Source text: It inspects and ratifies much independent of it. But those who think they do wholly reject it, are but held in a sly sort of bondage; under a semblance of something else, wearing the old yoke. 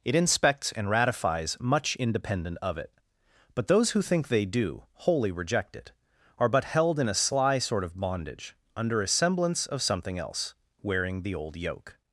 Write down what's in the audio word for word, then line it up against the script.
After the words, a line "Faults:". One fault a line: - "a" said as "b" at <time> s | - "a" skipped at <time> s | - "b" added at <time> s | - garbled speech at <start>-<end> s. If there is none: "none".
It inspects and ratifies much independent of it. But those who think they do wholly reject it, are but held in a sly sort of bondage; under a semblance of something else, wearing the old yoke.
Faults:
none